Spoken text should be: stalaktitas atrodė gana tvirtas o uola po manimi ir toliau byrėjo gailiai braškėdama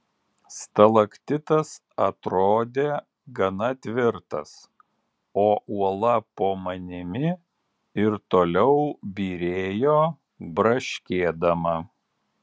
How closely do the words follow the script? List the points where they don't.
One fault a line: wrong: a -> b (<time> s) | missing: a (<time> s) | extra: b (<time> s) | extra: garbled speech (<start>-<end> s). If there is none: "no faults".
missing: gailiai (10.0 s)